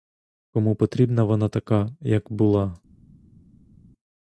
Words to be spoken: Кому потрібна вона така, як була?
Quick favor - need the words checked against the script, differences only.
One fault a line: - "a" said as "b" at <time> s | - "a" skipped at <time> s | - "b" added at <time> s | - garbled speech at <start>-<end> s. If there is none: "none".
none